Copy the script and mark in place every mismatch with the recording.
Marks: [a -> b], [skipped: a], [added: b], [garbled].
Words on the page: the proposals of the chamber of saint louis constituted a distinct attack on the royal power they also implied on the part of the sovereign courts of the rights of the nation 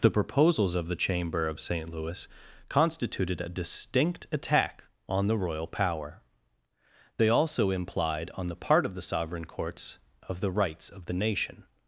the proposals of the chamber of saint louis constituted a distinct attack on the royal power they also implied on the part of the sovereign courts of the rights of the nation